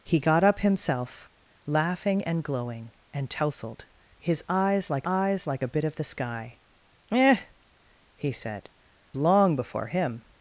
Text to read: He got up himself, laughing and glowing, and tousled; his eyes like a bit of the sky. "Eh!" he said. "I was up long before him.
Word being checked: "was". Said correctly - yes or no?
no